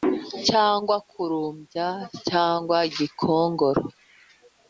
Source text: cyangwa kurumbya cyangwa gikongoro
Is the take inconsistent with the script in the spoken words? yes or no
no